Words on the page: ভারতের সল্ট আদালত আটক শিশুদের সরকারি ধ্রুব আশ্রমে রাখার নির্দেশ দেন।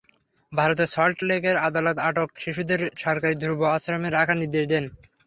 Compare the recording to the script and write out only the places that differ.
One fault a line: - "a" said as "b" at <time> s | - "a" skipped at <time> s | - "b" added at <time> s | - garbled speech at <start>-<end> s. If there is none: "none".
- "লেকের" added at 1.3 s